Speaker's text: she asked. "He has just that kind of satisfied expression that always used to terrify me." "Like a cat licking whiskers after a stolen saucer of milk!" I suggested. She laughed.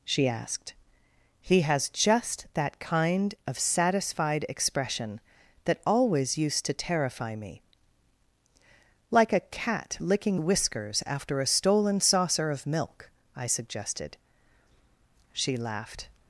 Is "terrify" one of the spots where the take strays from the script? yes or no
no